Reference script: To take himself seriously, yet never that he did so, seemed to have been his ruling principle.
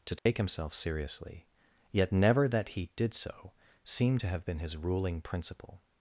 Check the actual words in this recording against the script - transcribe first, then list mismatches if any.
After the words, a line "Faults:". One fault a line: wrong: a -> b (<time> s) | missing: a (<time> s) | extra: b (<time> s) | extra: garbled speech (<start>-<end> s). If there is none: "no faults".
To take himself seriously, yet never that he did so, seemed to have been his ruling principle.
Faults:
no faults